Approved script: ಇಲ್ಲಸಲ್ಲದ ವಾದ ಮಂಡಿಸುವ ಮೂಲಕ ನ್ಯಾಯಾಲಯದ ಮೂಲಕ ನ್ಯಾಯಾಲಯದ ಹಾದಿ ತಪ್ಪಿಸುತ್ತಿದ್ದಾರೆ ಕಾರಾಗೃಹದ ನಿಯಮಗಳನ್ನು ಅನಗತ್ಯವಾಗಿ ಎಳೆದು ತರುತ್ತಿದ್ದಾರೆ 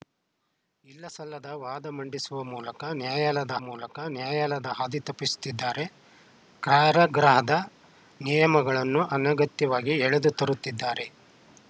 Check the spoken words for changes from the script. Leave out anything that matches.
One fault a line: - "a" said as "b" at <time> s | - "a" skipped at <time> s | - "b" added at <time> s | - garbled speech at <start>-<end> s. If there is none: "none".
none